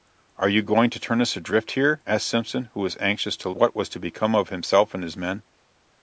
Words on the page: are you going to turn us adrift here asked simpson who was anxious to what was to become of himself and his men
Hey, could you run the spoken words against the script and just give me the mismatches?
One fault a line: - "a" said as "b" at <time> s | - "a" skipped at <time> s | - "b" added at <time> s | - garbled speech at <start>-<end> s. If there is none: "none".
none